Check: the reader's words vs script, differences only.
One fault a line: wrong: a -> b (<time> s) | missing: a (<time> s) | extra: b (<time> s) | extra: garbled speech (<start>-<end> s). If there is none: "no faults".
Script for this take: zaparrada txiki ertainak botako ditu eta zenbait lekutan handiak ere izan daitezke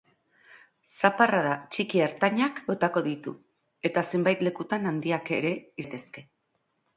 missing: izan (5.6 s)